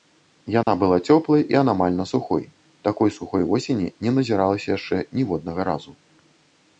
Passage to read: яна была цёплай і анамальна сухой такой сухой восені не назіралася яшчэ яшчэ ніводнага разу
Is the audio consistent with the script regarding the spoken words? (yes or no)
no